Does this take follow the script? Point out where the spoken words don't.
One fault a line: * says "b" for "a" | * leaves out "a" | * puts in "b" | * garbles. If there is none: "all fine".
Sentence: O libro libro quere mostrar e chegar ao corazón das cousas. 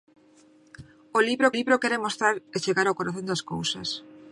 all fine